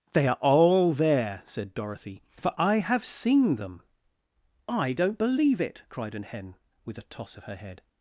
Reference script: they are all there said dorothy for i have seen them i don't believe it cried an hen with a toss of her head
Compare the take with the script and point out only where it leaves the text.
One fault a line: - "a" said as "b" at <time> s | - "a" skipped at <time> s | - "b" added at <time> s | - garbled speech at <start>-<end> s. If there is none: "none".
none